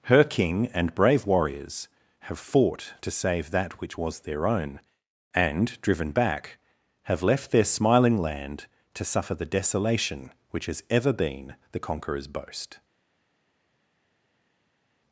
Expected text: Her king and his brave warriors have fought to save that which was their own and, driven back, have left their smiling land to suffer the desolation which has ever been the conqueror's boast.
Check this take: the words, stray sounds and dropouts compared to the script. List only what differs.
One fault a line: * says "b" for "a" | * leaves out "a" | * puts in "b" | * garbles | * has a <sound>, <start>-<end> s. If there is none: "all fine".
* leaves out "his"